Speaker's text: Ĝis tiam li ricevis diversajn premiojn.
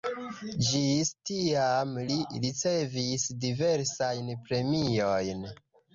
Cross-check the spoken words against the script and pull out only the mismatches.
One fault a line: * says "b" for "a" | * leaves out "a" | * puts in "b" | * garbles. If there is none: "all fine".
all fine